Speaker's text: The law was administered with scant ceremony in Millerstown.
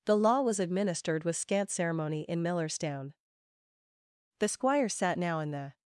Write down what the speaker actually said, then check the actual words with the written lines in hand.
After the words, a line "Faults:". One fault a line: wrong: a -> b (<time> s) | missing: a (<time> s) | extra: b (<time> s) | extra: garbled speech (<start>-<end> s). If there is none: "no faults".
The law was administered with scant ceremony in Millerstown. The squire sat now in the
Faults:
extra: The squire sat now in the (4.4 s)